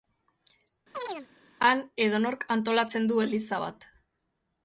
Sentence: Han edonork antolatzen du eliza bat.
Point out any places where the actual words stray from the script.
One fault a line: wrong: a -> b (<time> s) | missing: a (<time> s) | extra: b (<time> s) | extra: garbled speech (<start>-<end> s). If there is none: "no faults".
no faults